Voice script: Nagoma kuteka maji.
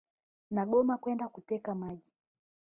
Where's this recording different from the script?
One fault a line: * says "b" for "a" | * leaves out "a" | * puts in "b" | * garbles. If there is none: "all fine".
* puts in "kwenda"